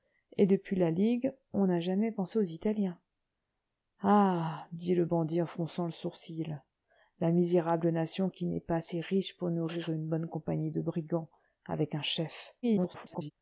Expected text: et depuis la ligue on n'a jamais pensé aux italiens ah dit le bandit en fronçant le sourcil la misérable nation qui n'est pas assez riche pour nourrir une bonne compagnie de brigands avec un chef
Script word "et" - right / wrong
right